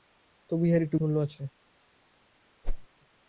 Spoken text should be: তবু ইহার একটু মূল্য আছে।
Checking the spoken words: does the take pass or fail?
pass